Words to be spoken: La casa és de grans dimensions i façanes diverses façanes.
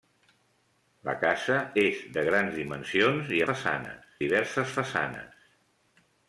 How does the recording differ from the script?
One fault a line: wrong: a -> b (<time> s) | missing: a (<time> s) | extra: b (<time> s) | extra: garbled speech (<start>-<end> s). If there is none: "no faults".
no faults